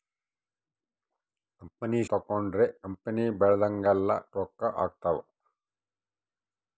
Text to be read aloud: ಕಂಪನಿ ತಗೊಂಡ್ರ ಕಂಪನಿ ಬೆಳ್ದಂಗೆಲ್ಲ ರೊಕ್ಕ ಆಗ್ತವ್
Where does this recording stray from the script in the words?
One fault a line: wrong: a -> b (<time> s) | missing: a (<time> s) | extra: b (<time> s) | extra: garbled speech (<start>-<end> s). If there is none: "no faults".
no faults